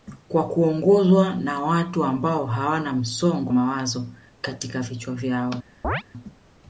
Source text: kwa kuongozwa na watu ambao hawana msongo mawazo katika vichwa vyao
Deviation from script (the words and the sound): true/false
true